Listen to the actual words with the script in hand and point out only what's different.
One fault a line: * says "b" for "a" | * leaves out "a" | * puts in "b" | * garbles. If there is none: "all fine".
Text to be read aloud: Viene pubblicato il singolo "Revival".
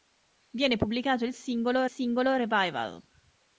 * puts in "singolo"